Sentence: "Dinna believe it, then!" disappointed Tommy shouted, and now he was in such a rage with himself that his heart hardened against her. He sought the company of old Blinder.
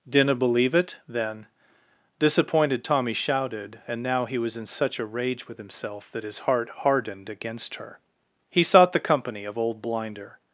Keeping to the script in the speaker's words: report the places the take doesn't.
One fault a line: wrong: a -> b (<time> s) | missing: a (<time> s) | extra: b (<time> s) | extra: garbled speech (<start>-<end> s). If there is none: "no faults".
no faults